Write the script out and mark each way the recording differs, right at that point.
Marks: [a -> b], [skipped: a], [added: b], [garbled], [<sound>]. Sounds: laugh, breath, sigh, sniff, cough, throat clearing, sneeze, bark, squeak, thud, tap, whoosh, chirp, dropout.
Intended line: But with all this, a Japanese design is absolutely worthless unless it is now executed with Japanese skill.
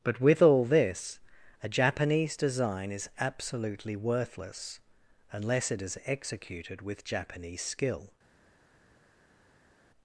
But with all this, a Japanese design is absolutely worthless unless it is [skipped: now] executed with Japanese skill.